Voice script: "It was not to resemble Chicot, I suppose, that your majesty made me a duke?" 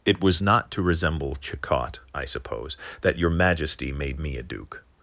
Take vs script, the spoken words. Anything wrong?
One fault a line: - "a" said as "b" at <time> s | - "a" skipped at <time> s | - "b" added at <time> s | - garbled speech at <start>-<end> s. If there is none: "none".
none